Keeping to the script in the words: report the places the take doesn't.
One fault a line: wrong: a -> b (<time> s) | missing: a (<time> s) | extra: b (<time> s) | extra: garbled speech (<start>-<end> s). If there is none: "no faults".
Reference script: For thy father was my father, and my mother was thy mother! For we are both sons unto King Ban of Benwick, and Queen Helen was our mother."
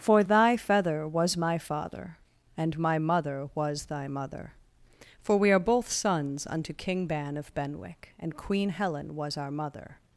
wrong: father -> feather (0.6 s)